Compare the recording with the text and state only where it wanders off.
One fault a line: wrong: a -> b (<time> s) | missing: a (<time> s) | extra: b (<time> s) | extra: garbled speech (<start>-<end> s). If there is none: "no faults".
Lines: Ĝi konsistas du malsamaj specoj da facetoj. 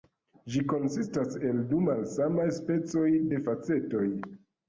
extra: el (1.5 s)
wrong: da -> de (3.3 s)